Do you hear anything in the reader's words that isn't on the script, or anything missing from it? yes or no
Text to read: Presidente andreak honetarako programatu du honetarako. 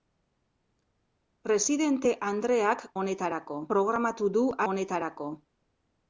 no